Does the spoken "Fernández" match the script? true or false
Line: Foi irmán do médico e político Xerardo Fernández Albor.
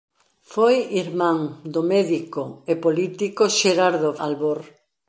false